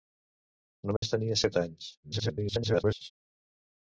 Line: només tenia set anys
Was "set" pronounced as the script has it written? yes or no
yes